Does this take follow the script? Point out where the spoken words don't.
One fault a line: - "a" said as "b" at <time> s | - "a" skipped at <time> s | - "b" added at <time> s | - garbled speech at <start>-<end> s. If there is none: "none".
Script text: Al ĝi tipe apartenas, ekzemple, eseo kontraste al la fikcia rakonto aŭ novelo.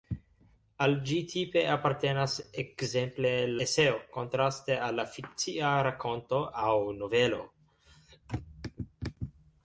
none